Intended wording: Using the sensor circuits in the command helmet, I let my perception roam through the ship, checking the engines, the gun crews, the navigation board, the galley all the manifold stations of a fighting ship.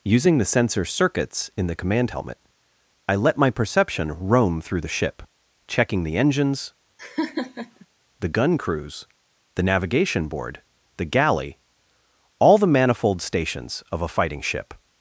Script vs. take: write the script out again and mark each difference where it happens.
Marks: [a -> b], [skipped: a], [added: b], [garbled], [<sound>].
Using the sensor circuits in the command helmet, I let my perception roam through the ship, checking the engines, [laugh] the gun crews, the navigation board, the galley all the manifold stations of a fighting ship.